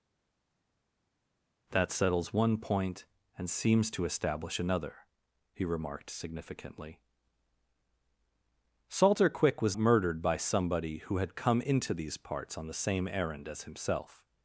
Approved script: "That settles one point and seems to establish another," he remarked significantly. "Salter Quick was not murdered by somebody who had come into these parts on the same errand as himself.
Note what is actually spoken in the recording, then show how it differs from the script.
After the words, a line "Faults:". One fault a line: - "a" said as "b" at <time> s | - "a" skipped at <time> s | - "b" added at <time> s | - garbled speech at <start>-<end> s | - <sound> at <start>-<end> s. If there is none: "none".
"That settles one point and seems to establish another," he remarked significantly. "Salter Quick was murdered by somebody who had come into these parts on the same errand as himself.
Faults:
- "not" skipped at 9.8 s